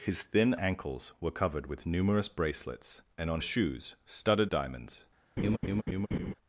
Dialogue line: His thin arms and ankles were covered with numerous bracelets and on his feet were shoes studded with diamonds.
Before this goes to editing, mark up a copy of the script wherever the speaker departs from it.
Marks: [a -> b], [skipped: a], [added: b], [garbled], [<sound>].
His thin [skipped: arms and] ankles were covered with numerous bracelets and on [skipped: his feet were] shoes studded [skipped: with] diamonds. [laugh]